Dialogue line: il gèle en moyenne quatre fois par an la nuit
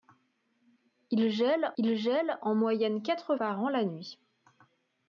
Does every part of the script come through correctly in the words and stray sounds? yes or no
no